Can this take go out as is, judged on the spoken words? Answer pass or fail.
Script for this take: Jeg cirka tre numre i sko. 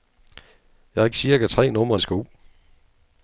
pass